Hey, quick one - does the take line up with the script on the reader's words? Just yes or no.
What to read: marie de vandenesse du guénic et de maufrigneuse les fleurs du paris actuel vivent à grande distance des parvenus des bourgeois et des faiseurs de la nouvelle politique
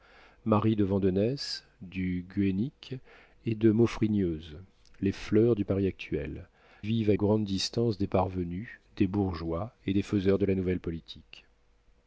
yes